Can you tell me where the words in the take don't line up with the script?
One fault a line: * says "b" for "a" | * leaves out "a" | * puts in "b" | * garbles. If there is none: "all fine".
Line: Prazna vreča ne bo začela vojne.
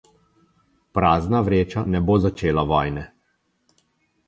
all fine